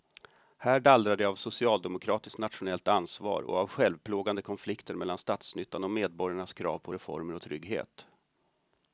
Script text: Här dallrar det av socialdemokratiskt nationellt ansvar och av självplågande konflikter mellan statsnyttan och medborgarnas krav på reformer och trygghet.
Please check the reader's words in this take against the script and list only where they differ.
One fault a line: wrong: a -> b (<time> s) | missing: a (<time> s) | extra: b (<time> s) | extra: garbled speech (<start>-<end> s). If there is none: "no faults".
no faults